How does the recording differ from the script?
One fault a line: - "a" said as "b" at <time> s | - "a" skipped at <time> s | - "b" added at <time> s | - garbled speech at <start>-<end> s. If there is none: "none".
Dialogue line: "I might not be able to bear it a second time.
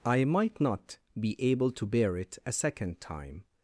none